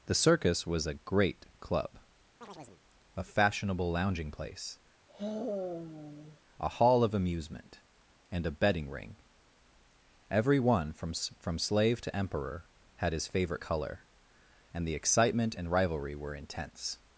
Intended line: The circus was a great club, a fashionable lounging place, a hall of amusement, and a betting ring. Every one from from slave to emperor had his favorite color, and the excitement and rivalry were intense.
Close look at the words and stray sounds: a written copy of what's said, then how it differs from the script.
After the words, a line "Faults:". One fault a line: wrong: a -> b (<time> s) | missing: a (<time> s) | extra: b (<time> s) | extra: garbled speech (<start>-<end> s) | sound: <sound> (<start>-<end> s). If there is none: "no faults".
The circus was a great club, a fashionable lounging place, a hall of amusement, and a betting ring. Every one from from slave to emperor had his favorite color, and the excitement and rivalry were intense.
Faults:
sound: chirp (2.4-2.8 s)
sound: sigh (5.1-6.4 s)